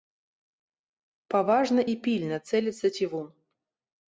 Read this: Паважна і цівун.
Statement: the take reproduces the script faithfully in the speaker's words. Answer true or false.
false